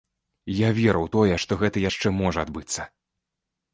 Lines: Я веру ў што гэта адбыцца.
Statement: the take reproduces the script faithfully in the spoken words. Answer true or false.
false